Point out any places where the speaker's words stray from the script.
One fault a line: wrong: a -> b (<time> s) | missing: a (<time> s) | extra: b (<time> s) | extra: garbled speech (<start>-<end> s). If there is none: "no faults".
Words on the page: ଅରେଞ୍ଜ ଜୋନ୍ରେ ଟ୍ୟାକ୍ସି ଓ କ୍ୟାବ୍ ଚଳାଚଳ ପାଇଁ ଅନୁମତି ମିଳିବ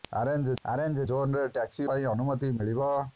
extra: ଅରେଞ୍ଜ (0.6 s)
missing: ଓ କ୍ୟାବ୍ ଚଳାଚଳ (1.9 s)